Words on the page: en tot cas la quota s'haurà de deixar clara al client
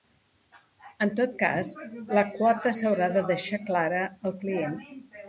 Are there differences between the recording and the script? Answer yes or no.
no